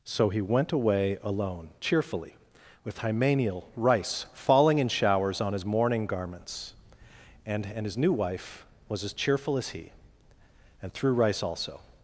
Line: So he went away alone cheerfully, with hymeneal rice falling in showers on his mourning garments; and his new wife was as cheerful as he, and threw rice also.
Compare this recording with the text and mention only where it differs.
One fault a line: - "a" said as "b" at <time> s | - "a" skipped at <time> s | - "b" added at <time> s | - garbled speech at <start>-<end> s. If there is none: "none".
- "and" added at 7.7 s